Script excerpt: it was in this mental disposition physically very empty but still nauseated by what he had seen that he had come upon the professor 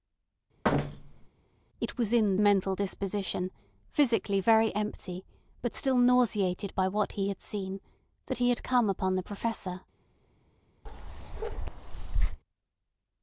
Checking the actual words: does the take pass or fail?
fail